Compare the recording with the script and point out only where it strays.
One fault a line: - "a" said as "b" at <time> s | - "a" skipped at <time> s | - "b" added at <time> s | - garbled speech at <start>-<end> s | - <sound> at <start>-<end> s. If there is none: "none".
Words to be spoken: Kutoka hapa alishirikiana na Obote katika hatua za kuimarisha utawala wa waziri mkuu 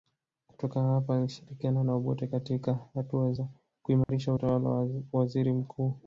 - dropout at 4.0-4.1 s